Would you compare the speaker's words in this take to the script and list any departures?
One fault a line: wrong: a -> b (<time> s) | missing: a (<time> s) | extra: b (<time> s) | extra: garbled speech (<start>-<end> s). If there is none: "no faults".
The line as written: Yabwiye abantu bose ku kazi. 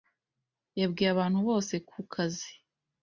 no faults